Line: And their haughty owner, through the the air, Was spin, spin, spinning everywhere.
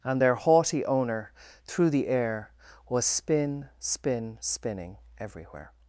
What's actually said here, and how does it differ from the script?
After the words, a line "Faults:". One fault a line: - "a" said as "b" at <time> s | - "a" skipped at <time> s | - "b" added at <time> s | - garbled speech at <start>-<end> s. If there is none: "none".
And their haughty owner, through the air, Was spin, spin, spinning everywhere.
Faults:
- "the" skipped at 2.1 s